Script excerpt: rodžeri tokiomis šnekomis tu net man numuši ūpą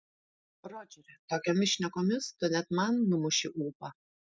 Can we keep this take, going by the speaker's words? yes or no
yes